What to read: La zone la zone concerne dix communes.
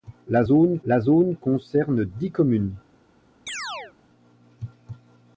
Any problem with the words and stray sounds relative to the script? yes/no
yes